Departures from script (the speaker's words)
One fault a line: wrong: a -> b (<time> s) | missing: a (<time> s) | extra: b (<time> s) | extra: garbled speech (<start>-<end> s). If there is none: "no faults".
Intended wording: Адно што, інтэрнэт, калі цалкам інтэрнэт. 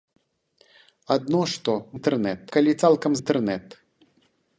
no faults